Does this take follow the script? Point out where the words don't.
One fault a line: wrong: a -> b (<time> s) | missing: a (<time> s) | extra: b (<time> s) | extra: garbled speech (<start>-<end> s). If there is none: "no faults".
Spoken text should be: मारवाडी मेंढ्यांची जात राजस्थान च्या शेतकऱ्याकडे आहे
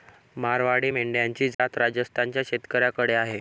no faults